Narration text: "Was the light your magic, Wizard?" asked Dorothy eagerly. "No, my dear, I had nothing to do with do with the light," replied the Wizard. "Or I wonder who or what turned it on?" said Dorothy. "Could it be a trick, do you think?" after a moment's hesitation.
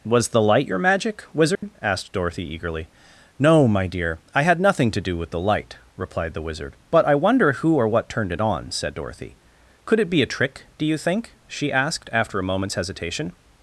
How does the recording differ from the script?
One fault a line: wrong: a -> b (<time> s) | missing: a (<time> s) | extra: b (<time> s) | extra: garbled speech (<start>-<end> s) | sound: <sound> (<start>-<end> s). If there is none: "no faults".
sound: dropout (1.6-1.6 s)
missing: do with (5.3 s)
wrong: Or -> But (6.9 s)
extra: she asked (11.5 s)